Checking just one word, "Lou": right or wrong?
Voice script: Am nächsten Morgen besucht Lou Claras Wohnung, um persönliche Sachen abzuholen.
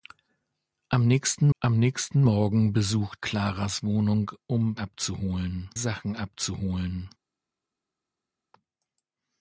wrong